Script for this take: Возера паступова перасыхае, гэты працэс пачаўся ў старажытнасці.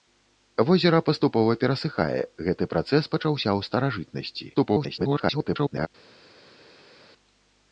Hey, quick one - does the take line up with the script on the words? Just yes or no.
no